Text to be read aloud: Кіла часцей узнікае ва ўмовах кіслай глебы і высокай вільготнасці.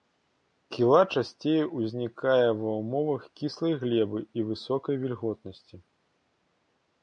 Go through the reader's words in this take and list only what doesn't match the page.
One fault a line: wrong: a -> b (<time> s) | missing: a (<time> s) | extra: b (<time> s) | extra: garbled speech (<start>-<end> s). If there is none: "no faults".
no faults